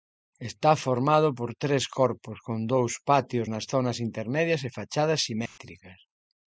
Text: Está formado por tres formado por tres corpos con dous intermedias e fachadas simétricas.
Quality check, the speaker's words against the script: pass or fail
fail